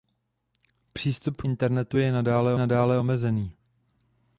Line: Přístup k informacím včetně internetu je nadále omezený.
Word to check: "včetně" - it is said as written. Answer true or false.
false